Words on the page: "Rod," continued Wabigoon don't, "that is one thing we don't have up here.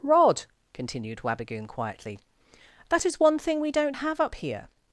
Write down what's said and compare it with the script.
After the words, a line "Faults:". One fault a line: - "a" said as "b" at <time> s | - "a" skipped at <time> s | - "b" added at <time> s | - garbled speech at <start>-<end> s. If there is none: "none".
"Rod," continued Wabigoon quietly, "that is one thing we don't have up here.
Faults:
- "don't" said as "quietly" at 1.7 s